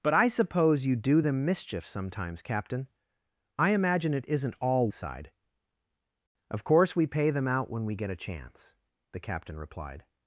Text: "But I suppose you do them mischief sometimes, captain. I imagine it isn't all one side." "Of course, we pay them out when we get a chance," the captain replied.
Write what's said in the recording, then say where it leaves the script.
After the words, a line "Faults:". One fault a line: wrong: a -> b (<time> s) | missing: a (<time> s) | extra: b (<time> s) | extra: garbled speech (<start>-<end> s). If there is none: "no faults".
"But I suppose you do them mischief sometimes, captain. I imagine it isn't all side." "Of course, we pay them out when we get a chance," the captain replied.
Faults:
missing: one (4.9 s)